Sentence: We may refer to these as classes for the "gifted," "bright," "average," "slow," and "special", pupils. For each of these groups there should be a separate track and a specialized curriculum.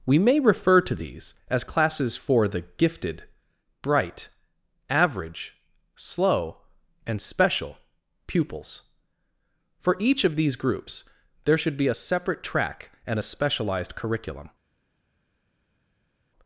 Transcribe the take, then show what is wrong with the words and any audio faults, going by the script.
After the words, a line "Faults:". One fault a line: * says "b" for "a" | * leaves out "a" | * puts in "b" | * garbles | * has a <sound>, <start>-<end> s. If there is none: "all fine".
We may refer to these as classes for the "gifted," "bright," "average," "slow," and "special", pupils. For each of these groups there should be a separate track and a specialized curriculum.
Faults:
all fine